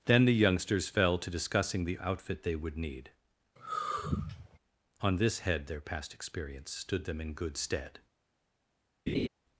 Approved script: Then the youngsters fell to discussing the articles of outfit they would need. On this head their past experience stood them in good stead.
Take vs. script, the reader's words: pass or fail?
fail